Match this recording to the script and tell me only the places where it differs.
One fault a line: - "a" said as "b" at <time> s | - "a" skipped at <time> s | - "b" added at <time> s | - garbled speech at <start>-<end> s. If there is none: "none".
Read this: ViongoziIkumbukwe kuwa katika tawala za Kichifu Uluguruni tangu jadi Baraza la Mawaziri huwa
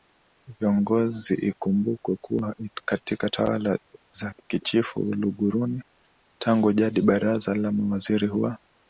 none